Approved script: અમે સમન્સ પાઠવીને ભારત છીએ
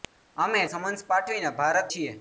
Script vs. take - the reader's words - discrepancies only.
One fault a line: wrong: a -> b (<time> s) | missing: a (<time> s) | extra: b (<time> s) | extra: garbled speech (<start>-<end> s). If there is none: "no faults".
no faults